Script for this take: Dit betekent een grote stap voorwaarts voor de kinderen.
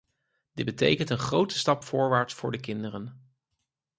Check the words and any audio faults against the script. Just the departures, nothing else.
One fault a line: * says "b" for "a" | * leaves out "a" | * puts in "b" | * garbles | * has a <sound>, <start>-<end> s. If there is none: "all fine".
all fine